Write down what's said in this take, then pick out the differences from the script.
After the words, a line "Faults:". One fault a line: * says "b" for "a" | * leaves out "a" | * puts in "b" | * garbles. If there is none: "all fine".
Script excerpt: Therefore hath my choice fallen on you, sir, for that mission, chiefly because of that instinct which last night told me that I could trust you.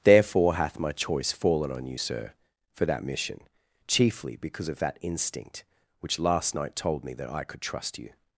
Therefore hath my choice fallen on you, sir, for that mission, chiefly because of that instinct which last night told me that I could trust you.
Faults:
all fine